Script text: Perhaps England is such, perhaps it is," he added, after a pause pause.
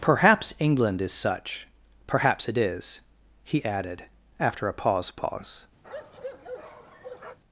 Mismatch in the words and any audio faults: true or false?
true